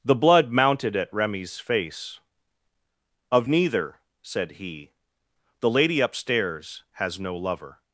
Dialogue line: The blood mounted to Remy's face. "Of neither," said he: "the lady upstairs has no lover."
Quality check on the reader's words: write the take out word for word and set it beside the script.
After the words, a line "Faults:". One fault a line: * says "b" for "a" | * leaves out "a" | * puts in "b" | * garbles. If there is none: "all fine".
The blood mounted at Remy's face. "Of neither," said he: "the lady upstairs has no lover."
Faults:
* says "at" for "to"